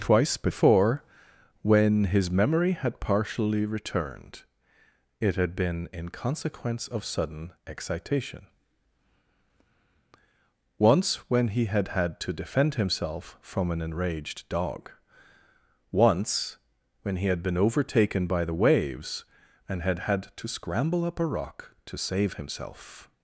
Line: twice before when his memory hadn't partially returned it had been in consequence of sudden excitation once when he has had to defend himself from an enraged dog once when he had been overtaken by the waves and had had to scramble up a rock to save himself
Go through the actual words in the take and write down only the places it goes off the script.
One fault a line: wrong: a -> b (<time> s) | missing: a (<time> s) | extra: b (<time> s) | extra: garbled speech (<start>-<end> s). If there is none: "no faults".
wrong: hadn't -> had (2.7 s)
wrong: has -> had (11.7 s)